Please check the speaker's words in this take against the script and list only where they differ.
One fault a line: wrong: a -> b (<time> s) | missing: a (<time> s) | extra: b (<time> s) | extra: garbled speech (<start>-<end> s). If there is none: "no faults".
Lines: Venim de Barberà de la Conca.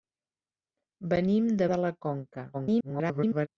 missing: Barberà (1.7 s)
extra: garbled speech (2.5-3.5 s)